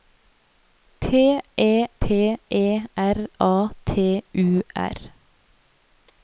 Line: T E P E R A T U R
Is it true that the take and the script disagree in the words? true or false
false